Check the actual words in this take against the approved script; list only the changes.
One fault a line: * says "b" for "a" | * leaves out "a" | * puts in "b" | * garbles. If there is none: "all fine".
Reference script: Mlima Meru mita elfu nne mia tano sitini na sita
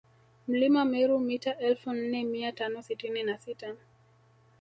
all fine